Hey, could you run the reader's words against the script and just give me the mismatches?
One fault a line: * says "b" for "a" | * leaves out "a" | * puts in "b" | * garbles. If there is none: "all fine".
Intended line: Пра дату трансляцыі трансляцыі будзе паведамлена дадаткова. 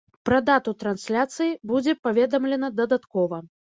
* leaves out "трансляцыі"